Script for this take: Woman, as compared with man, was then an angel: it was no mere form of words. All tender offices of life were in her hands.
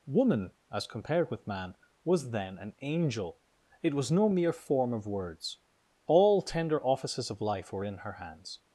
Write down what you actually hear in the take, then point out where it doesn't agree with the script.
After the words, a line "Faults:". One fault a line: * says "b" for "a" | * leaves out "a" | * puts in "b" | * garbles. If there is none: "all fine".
Woman, as compared with man, was then an angel: it was no mere form of words. All tender offices of life were in her hands.
Faults:
all fine